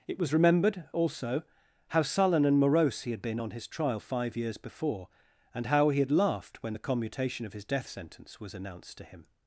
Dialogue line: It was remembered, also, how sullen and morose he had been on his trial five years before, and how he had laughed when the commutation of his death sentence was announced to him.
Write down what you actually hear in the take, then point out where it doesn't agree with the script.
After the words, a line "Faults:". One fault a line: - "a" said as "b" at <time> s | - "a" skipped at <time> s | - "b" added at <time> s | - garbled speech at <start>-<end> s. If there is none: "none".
It was remembered, also, how sullen and morose he had been on his trial five years before, and how he had laughed when the commutation of his death sentence was announced to him.
Faults:
none